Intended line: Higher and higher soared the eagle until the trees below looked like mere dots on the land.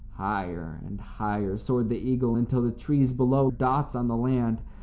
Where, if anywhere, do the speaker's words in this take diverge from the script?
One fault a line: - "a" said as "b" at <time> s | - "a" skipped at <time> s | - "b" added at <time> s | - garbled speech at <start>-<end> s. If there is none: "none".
- "looked like mere" skipped at 3.5 s